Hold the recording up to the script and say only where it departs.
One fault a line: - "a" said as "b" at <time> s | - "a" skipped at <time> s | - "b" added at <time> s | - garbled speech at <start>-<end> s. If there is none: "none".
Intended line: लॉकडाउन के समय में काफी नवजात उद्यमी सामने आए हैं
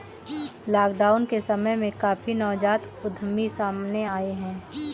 none